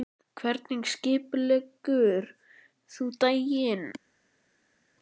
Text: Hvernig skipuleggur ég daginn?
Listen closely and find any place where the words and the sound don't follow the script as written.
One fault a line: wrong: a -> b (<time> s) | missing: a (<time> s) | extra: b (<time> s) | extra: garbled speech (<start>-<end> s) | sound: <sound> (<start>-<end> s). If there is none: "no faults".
wrong: ég -> þú (3.0 s)